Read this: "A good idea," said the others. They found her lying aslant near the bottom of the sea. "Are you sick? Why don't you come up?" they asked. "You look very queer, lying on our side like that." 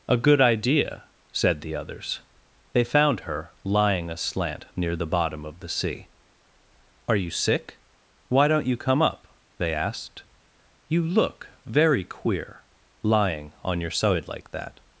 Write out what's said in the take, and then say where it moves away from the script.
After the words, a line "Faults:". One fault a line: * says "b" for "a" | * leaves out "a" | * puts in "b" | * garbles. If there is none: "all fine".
"A good idea," said the others. They found her lying aslant near the bottom of the sea. "Are you sick? Why don't you come up?" they asked. "You look very queer, lying on your side like that."
Faults:
* says "your" for "our"